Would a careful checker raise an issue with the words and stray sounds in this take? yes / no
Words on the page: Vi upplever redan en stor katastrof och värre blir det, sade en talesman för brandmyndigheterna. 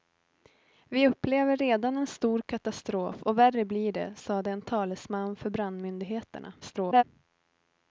yes